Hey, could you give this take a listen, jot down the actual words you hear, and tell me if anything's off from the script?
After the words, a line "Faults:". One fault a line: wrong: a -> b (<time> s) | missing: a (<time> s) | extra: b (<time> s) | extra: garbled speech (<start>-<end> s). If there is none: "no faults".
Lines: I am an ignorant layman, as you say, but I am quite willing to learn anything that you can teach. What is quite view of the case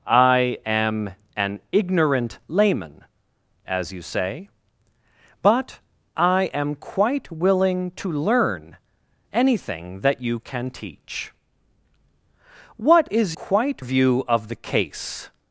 I am an ignorant layman, as you say, but I am quite willing to learn anything that you can teach. What is quite view of the case
Faults:
no faults